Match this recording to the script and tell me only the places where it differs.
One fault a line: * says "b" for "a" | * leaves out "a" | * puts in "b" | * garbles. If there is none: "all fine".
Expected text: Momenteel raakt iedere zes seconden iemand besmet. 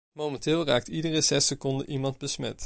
all fine